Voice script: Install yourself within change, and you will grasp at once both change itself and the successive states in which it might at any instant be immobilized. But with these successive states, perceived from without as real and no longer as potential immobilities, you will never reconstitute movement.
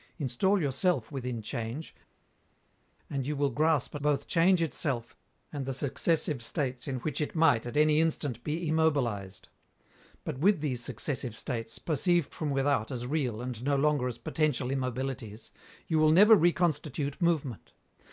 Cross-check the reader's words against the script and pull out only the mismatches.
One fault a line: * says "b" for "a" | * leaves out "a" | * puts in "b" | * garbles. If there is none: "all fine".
* leaves out "at once"